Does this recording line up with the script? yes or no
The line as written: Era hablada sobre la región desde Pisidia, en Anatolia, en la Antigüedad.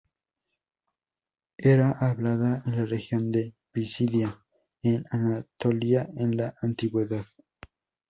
no